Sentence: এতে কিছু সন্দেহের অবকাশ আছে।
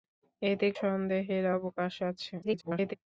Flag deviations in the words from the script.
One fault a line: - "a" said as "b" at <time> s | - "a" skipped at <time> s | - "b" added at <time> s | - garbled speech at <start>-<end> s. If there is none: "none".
- "কিছু" skipped at 0.7 s
- garbled speech at 2.4-2.9 s